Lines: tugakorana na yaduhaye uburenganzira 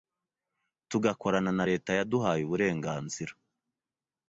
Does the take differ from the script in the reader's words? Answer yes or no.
yes